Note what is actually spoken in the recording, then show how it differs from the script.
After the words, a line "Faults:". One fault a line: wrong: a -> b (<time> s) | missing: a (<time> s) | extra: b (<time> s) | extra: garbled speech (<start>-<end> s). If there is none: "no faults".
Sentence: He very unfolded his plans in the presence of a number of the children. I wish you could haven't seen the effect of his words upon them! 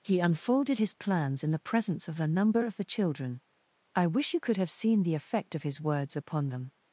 He unfolded his plans in the presence of a number of the children. I wish you could have seen the effect of his words upon them!
Faults:
missing: very (0.2 s)
wrong: haven't -> have (4.6 s)